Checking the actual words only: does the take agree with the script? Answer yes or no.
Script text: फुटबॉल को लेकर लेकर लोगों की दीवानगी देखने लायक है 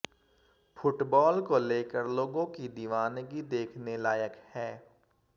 no